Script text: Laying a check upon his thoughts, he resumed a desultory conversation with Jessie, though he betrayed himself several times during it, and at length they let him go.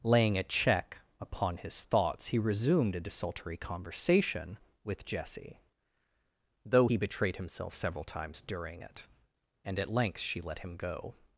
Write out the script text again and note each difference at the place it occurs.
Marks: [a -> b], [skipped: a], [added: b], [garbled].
Laying a check upon his thoughts, he resumed a desultory conversation with Jessie, though he betrayed himself several times during it, and at length [they -> she] let him go.